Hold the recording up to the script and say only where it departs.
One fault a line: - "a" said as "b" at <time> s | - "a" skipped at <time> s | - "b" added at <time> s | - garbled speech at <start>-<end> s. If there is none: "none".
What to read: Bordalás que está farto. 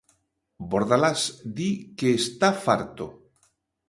- "di" added at 1.6 s